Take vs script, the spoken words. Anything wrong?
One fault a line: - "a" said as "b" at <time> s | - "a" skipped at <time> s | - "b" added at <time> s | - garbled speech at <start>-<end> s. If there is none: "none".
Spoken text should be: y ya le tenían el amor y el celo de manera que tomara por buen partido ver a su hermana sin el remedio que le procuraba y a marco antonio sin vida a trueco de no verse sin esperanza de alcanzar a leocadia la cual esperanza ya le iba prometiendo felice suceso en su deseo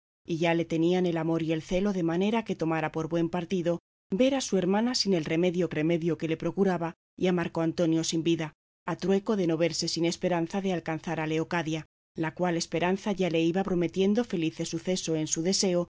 - "remedio" added at 5.7 s